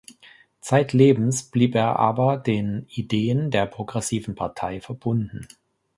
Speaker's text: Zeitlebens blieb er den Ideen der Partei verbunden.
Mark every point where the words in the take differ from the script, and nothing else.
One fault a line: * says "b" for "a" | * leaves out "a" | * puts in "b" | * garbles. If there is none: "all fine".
* puts in "aber"
* puts in "Progressiven"